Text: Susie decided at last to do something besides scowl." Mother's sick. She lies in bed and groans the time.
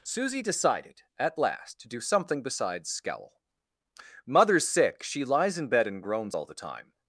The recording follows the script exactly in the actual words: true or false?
false